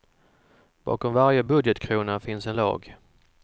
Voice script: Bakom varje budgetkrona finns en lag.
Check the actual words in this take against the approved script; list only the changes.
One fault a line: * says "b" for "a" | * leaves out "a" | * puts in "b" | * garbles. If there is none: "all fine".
all fine